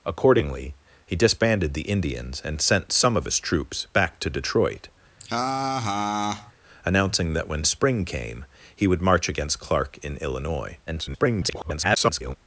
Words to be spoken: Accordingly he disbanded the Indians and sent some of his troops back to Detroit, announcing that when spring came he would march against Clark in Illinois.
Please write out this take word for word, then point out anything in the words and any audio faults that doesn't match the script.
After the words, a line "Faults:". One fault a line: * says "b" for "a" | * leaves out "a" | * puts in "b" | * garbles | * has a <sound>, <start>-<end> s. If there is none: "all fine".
Accordingly he disbanded the Indians and sent some of his troops back to Detroit, announcing that when spring came he would march against Clark in Illinois. [garbled]
Faults:
* has a laugh, 5.2-6.5 s
* garbles